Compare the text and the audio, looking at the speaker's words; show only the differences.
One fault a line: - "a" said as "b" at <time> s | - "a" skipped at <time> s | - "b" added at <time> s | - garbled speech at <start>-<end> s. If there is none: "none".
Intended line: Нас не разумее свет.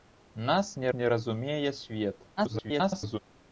- "не" added at 0.9 s
- garbled speech at 2.4-3.2 s